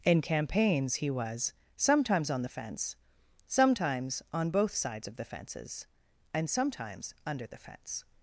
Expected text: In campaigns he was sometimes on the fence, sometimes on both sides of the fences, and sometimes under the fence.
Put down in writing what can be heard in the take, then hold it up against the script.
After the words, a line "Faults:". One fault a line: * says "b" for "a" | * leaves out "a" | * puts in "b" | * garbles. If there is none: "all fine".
In campaigns he was sometimes on the fence, sometimes on both sides of the fences, and sometimes under the fence.
Faults:
all fine